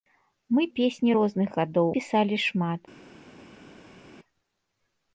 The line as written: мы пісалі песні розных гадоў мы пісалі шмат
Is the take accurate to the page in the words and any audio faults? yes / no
no